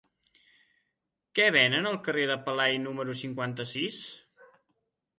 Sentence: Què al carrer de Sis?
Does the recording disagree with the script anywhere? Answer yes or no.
yes